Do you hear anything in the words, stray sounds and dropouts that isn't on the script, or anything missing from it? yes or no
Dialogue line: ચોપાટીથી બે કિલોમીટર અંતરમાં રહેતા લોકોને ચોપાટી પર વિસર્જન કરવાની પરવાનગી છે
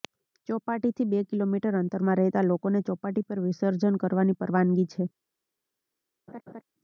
yes